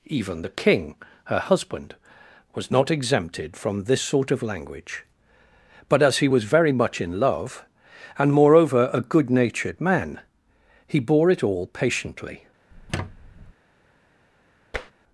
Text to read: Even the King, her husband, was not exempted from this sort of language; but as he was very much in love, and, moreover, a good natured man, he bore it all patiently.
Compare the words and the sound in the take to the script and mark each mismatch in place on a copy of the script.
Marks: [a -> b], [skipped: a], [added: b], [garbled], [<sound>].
Even the King, her husband, was not exempted from this sort of language; but as he was very much in love, and, moreover, a good natured man, he bore it all patiently. [squeak] [tap]